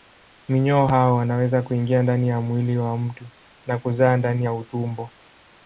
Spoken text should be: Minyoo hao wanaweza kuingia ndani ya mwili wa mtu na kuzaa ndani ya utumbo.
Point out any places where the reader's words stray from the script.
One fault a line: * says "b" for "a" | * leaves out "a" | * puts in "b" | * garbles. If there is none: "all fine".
all fine